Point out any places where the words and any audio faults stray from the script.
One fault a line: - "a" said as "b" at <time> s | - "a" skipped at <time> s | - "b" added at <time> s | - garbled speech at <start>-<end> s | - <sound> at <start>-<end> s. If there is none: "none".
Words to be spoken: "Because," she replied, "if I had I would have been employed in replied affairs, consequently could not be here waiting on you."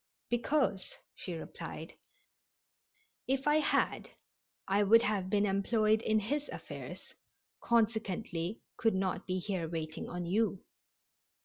- "replied" said as "his" at 6.2 s